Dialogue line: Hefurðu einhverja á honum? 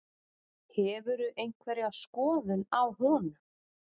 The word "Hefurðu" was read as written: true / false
true